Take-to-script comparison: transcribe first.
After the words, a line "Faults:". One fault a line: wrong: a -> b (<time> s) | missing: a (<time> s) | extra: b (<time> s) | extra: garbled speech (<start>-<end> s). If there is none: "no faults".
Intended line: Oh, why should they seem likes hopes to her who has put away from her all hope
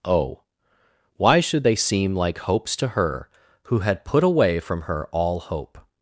Oh, why should they seem like hopes to her who had put away from her all hope
Faults:
wrong: likes -> like (2.1 s)
wrong: has -> had (3.8 s)